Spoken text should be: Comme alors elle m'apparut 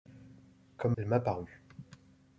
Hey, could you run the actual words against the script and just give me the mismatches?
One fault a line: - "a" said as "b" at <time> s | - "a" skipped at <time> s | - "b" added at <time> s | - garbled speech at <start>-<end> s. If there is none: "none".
- "alors" skipped at 1.0 s